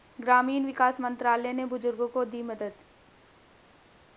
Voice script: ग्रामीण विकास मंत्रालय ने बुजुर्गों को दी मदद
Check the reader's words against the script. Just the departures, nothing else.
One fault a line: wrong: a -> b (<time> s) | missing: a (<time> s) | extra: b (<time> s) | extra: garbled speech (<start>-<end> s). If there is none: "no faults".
no faults